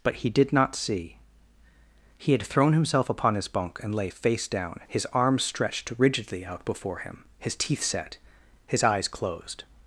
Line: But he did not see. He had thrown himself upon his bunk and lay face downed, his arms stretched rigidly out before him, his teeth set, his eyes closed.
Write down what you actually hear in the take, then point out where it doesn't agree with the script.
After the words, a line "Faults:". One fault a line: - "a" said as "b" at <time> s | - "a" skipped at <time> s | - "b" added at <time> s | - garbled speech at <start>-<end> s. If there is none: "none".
But he did not see. He had thrown himself upon his bunk and lay face down, his arms stretched rigidly out before him, his teeth set, his eyes closed.
Faults:
- "downed" said as "down" at 4.5 s